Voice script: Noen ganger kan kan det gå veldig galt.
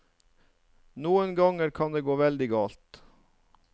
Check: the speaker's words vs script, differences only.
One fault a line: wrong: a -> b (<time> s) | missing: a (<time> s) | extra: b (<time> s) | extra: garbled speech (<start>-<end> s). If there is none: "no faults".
missing: kan (1.9 s)